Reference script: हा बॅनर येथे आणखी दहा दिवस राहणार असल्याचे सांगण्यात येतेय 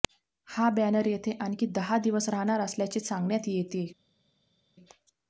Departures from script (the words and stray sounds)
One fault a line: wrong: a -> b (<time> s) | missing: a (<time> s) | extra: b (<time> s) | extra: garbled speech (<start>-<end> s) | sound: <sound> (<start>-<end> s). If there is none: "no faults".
no faults